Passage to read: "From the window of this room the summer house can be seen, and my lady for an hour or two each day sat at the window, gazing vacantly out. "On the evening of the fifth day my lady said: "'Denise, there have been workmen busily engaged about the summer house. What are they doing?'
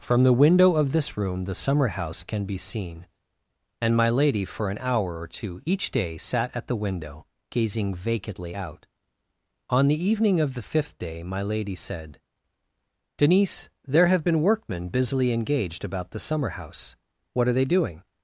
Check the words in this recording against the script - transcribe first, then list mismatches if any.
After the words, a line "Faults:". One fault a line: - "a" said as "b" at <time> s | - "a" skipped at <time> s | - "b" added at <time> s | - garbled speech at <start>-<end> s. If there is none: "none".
"From the window of this room the summer house can be seen, and my lady for an hour or two each day sat at the window, gazing vacantly out. "On the evening of the fifth day my lady said: "'Denise, there have been workmen busily engaged about the summer house. What are they doing?'
Faults:
none